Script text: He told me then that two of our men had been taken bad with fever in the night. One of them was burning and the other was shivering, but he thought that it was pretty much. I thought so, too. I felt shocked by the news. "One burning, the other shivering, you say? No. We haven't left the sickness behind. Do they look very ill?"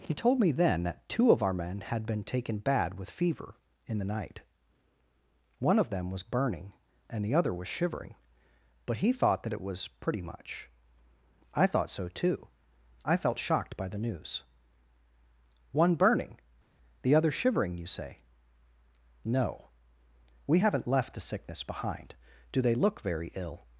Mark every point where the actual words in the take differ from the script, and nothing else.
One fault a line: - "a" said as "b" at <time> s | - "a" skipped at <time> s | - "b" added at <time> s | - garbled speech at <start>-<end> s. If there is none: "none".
none